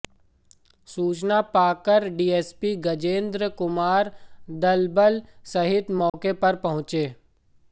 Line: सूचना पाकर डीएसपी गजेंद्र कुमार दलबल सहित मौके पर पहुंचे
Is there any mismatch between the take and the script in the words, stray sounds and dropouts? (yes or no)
yes